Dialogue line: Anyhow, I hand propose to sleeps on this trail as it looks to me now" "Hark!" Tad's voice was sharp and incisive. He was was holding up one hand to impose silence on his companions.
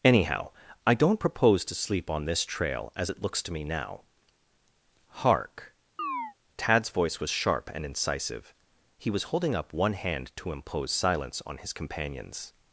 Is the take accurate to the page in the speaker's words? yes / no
no